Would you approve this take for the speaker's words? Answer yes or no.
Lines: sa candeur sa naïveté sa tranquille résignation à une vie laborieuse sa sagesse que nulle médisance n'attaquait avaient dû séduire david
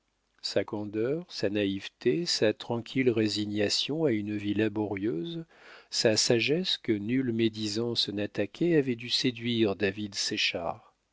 yes